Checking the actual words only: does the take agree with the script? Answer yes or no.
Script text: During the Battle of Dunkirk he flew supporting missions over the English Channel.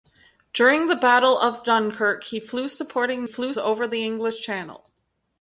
no